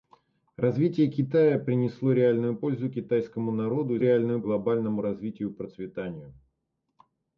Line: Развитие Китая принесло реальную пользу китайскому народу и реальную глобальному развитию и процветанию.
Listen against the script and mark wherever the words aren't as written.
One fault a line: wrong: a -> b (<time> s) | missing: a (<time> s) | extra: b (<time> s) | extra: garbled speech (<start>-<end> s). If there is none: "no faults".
no faults